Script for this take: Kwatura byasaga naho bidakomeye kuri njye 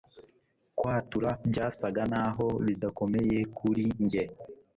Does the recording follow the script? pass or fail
pass